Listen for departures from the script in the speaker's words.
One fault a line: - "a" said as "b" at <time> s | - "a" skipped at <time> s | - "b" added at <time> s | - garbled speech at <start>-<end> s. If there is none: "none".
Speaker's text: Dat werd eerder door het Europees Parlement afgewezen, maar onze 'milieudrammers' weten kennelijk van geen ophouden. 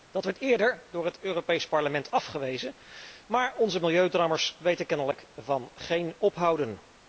none